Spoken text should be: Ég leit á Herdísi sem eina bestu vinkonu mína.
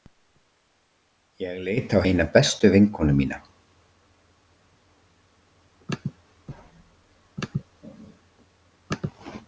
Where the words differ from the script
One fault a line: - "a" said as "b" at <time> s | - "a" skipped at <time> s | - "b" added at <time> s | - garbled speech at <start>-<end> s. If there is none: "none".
- "Herdísi sem" skipped at 2.0 s